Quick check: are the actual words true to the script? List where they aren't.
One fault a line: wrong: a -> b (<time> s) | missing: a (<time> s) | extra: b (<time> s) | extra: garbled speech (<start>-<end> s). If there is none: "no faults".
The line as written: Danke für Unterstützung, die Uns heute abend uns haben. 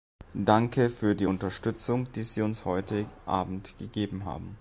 extra: die (1.1 s)
extra: Sie (2.2 s)
wrong: uns -> gegeben (3.8 s)